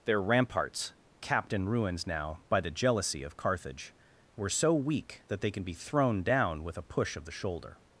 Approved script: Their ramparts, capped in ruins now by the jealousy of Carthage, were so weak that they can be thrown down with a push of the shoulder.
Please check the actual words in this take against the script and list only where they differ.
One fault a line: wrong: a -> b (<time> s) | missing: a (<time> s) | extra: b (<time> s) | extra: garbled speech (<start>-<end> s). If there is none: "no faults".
no faults